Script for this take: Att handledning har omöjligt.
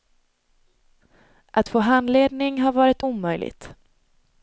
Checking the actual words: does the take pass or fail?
fail